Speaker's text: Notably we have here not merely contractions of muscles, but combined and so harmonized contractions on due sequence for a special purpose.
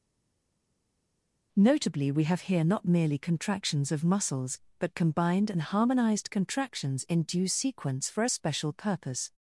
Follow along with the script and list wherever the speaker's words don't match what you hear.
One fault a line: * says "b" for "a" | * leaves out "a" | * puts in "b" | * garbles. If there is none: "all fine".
* leaves out "so"
* says "in" for "on"